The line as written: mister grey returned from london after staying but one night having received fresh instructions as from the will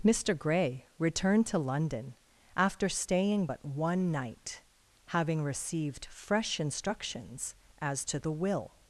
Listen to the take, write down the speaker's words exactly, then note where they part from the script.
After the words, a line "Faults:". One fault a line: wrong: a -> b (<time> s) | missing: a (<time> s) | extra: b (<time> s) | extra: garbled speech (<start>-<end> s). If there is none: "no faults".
mister grey returned to london after staying but one night having received fresh instructions as to the will
Faults:
wrong: from -> to (1.5 s)
wrong: from -> to (8.0 s)